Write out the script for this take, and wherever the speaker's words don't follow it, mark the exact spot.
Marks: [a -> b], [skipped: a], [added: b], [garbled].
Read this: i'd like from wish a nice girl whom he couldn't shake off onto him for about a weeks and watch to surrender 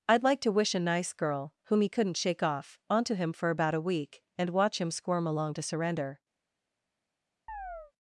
i'd like [from -> to] wish a nice girl whom he couldn't shake off onto him for about a [weeks -> week] and watch [added: him squirm along] to surrender